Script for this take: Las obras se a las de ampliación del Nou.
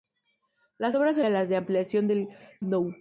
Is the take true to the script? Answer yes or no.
yes